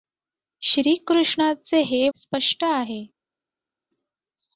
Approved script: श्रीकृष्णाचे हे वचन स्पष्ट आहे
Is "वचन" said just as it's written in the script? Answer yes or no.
no